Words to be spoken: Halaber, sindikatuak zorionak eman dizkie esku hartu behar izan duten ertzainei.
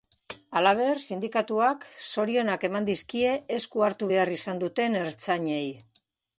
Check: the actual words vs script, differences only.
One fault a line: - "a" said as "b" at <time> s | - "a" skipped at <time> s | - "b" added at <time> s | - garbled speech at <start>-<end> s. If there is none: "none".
none